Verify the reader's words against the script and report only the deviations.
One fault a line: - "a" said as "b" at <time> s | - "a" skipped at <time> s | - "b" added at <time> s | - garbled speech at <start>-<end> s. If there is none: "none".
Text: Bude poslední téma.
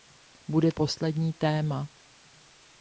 none